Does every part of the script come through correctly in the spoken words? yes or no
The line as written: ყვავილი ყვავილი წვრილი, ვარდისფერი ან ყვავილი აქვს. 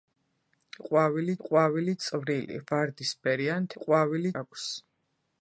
yes